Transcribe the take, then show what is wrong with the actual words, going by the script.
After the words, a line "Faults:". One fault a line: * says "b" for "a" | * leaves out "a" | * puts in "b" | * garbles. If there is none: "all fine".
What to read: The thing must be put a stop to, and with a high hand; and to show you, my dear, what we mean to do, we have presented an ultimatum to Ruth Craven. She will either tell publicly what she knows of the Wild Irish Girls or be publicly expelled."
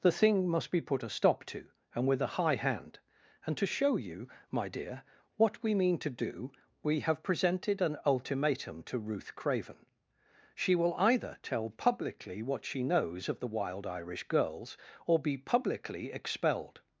The thing must be put a stop to, and with a high hand; and to show you, my dear, what we mean to do, we have presented an ultimatum to Ruth Craven. She will either tell publicly what she knows of the Wild Irish Girls or be publicly expelled."
Faults:
all fine